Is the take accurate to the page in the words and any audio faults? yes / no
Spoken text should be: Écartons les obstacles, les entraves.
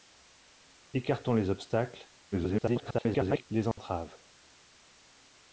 no